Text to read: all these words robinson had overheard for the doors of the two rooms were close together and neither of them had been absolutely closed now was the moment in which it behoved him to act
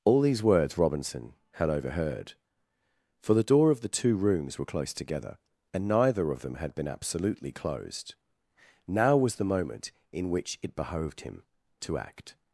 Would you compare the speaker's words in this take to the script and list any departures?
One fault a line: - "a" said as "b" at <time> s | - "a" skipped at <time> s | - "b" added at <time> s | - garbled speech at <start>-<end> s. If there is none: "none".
- "doors" said as "door" at 3.4 s